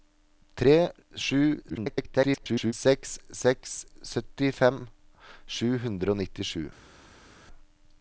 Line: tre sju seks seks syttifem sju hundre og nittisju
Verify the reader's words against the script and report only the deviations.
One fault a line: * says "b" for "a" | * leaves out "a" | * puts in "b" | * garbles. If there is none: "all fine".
* garbles